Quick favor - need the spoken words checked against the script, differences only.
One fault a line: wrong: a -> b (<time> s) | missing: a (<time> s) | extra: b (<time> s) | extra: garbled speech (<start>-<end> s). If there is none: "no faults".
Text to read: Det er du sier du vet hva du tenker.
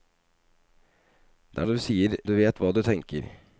no faults